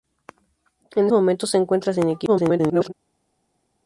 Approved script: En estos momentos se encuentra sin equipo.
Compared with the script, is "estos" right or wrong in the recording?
wrong